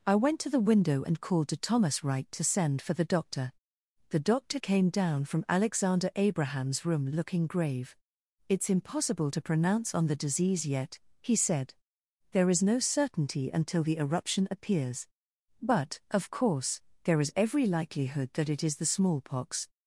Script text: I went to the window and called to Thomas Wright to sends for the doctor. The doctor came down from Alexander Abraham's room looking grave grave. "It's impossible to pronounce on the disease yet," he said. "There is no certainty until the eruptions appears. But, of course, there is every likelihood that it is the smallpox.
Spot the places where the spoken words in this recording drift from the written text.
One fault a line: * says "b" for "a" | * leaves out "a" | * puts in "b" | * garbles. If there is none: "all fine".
* says "send" for "sends"
* leaves out "grave"
* says "eruption" for "eruptions"